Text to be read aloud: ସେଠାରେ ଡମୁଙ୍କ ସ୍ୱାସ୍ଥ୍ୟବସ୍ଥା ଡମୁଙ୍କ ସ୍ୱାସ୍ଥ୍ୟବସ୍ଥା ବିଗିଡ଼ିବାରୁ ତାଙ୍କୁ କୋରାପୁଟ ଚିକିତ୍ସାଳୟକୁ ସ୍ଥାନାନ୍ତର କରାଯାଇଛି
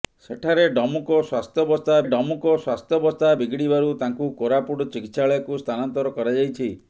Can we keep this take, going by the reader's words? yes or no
yes